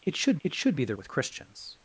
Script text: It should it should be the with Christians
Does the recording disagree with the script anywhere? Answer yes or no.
no